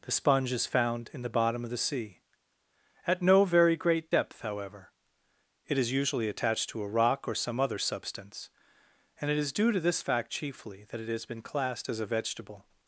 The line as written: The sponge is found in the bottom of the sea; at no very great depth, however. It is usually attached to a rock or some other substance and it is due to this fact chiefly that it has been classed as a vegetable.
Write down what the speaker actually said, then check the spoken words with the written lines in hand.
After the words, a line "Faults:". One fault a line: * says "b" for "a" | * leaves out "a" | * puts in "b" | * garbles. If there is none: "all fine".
The sponge is found in the bottom of the sea; at no very great depth, however. It is usually attached to a rock or some other substance and it is due to this fact chiefly that it has been classed as a vegetable.
Faults:
all fine